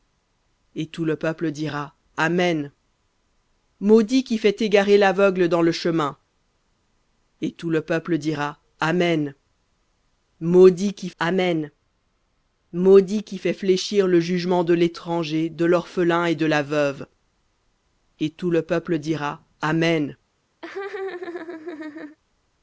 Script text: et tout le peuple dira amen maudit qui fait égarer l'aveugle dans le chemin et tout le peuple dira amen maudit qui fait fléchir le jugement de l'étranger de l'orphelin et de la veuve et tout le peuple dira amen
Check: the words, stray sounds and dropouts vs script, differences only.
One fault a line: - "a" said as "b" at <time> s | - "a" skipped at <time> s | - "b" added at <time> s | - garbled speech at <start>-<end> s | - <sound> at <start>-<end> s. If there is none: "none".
- "amen maudit qui" added at 11.2 s
- laugh at 20.6-22.2 s